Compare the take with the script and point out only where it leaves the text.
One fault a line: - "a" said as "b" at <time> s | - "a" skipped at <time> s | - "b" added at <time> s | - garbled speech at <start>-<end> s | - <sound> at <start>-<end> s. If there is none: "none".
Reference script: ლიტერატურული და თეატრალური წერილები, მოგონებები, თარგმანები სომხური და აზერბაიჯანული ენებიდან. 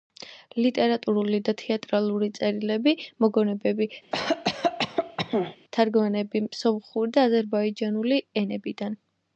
- cough at 4.1-5.6 s